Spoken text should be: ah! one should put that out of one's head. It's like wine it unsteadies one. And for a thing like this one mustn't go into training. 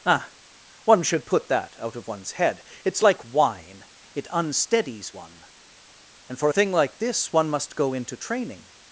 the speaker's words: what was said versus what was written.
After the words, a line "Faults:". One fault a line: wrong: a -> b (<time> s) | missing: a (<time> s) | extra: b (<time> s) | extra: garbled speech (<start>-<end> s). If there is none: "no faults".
ah! one should put that out of one's head. It's like wine it unsteadies one. And for a thing like this one must go into training.
Faults:
wrong: mustn't -> must (7.5 s)